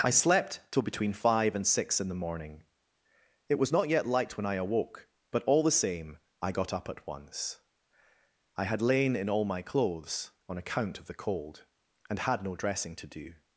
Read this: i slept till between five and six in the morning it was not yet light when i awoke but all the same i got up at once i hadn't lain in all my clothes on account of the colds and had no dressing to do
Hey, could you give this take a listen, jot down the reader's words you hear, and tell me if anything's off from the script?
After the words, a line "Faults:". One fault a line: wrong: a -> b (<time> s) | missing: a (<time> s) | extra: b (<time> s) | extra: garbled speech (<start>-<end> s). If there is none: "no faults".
i slept till between five and six in the morning it was not yet light when i awoke but all the same i got up at once i had lain in all my clothes on account of the cold and had no dressing to do
Faults:
wrong: hadn't -> had (8.7 s)
wrong: colds -> cold (11.1 s)